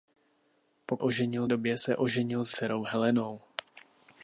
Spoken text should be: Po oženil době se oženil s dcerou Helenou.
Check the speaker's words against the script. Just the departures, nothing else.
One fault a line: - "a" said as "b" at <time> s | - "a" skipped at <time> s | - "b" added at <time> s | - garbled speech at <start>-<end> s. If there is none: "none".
none